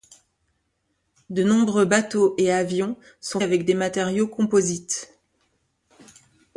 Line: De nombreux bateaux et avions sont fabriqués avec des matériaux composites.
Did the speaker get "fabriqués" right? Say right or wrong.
wrong